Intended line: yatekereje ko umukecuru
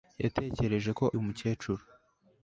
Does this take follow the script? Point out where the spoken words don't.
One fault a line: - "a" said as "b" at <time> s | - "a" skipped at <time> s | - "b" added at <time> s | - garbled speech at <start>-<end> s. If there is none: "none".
none